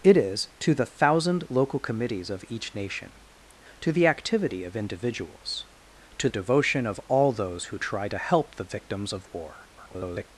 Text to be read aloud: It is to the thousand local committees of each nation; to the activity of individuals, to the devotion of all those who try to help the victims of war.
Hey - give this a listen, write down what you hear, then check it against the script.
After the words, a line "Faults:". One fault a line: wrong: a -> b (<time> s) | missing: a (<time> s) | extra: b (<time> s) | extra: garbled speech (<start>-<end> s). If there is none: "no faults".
It is to the thousand local committees of each nation; to the activity of individuals, to devotion of all those who try to help the victims of war. [garbled]
Faults:
missing: the (6.3 s)
extra: garbled speech (9.8-10.3 s)